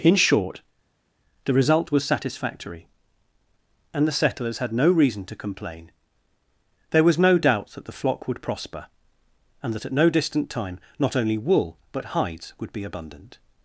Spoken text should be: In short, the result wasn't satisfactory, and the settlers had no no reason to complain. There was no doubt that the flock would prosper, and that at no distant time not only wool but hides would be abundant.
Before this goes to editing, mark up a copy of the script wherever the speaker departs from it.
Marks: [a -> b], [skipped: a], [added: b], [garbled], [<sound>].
In short, the result [wasn't -> was] satisfactory, and the settlers had no [skipped: no] reason to complain. There was no doubt that the flock would prosper, and that at no distant time not only wool but hides would be abundant.